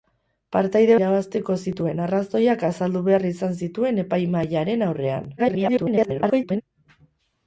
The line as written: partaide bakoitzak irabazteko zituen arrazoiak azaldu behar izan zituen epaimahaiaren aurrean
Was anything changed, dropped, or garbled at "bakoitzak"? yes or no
yes